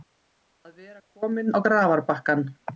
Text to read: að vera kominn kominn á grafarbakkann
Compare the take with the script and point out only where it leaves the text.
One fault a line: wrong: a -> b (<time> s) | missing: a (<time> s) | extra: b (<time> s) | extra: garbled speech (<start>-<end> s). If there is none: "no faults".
missing: kominn (1.5 s)